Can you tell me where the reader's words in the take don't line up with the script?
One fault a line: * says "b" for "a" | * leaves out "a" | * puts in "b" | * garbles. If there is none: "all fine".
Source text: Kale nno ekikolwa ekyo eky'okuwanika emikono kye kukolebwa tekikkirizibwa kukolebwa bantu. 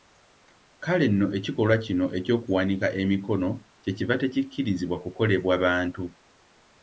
* says "kino" for "ekyo"
* says "kiva" for "kukolebwa"